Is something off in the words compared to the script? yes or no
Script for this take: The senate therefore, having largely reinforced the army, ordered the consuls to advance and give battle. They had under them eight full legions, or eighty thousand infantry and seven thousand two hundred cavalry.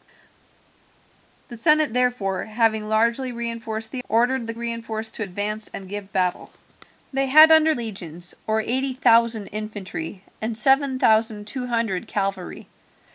yes